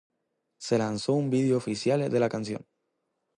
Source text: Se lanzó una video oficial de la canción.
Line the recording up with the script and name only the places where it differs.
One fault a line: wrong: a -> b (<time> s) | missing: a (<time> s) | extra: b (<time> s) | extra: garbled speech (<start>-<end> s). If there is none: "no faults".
wrong: una -> un (1.1 s)